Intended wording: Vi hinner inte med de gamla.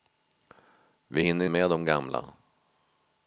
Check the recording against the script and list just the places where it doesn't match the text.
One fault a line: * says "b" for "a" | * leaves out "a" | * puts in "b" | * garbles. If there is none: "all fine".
* leaves out "inte"